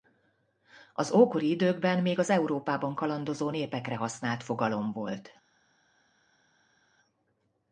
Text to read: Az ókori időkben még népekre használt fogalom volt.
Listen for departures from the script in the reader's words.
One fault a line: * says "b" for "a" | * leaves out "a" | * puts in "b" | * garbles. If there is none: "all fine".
* puts in "az Európában kalandozó"